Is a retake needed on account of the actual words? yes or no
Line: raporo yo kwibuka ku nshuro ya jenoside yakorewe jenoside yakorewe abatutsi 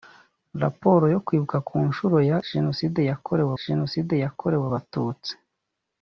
no